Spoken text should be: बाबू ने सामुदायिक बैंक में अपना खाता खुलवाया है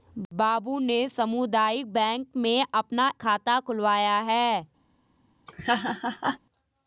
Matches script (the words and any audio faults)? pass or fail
fail